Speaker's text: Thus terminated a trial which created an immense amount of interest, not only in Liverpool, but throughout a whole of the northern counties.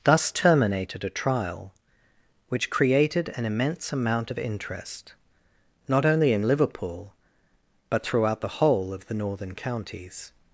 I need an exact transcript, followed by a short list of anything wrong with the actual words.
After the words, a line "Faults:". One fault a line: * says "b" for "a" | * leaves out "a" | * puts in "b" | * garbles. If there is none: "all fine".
Thus terminated a trial which created an immense amount of interest, not only in Liverpool, but throughout the whole of the northern counties.
Faults:
* says "the" for "a"